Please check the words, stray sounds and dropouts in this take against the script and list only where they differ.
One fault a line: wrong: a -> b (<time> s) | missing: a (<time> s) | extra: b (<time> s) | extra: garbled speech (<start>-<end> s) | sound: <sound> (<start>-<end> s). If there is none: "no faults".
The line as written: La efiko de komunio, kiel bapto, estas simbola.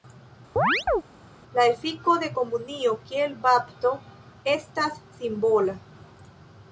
sound: chirp (0.6-1.0 s)